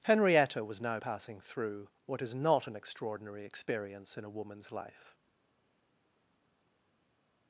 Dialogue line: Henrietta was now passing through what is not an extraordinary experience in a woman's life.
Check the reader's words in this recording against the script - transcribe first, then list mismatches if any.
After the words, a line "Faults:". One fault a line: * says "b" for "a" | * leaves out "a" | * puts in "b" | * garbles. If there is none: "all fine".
Henrietta was now passing through what is not an extraordinary experience in a woman's life.
Faults:
all fine